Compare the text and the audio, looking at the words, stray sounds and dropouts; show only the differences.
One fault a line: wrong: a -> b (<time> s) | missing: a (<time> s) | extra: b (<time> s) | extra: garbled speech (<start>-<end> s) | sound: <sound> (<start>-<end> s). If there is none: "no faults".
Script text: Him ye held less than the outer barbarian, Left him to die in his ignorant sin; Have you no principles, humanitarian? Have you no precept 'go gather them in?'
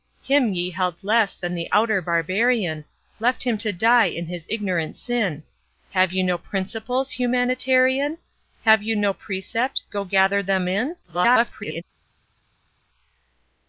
extra: garbled speech (11.0-11.8 s)